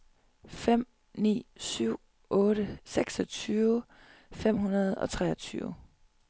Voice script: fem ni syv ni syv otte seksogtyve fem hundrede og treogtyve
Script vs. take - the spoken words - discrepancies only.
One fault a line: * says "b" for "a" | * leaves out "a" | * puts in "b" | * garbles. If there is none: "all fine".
* leaves out "ni syv"